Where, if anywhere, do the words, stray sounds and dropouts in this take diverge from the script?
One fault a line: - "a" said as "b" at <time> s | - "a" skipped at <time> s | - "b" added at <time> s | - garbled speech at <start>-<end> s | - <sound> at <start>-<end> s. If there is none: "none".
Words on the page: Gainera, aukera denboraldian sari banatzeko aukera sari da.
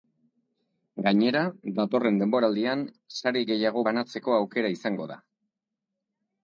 - "aukera" said as "datorren" at 1.8 s
- "gehiago" added at 3.5 s
- "sari" said as "izango" at 4.8 s